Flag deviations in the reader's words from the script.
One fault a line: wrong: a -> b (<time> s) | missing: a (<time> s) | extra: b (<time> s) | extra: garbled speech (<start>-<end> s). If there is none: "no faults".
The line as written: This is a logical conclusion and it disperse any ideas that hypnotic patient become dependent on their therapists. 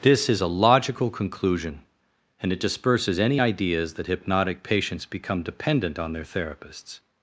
wrong: disperse -> disperses (2.6 s)
wrong: patient -> patients (4.6 s)